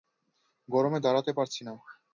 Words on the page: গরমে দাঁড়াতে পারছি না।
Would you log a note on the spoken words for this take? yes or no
no